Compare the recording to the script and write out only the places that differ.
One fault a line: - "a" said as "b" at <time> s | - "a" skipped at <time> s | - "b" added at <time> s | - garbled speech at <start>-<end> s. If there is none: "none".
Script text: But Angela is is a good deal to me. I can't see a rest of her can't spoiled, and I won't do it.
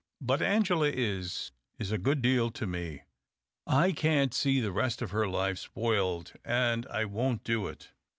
- "a" said as "the" at 4.6 s
- "can't" said as "life" at 5.3 s